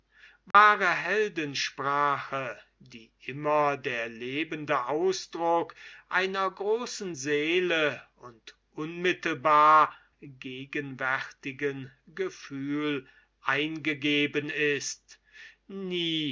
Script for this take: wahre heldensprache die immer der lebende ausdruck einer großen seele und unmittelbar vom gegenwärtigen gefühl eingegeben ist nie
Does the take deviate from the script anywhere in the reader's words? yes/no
yes